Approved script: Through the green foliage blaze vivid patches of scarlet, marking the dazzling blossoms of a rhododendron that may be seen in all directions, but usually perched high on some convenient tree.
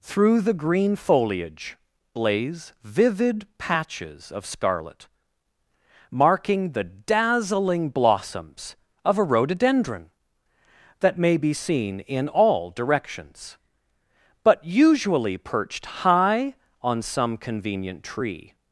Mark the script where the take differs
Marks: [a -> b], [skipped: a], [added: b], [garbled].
Through the green foliage blaze vivid patches of scarlet, marking the dazzling blossoms of a rhododendron that may be seen in all directions, but usually perched high on some convenient tree.